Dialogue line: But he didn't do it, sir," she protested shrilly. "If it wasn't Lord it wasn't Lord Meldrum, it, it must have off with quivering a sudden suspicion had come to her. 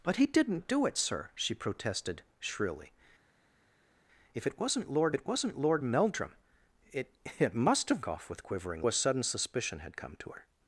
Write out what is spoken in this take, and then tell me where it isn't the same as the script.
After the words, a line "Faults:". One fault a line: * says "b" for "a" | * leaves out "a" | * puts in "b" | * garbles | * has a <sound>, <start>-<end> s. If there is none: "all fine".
But he didn't do it, sir," she protested shrilly. "If it wasn't Lord it wasn't Lord Meldrum, it, it must have off with quivering a sudden suspicion had come to her.
Faults:
all fine